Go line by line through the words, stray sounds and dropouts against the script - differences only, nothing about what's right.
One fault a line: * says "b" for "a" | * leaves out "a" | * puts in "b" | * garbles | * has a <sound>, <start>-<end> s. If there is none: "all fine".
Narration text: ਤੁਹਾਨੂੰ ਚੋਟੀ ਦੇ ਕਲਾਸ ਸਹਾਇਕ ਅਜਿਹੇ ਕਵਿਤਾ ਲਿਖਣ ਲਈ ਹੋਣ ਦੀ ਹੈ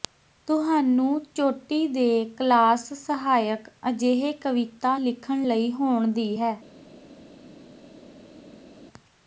all fine